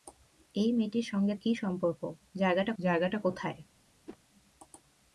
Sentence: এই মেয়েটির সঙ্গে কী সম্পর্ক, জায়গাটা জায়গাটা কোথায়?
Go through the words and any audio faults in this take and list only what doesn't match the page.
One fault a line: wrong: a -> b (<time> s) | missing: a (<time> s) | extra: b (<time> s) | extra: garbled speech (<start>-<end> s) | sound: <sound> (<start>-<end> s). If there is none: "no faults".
sound: whoosh (4.1-4.2 s)